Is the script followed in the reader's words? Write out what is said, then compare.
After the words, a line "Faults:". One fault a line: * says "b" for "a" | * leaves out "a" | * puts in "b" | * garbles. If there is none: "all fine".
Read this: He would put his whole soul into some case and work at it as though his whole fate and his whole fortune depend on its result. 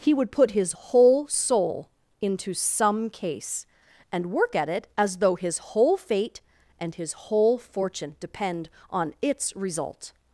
He would put his whole soul into some case and work at it as though his whole fate and his whole fortune depend on its result.
Faults:
all fine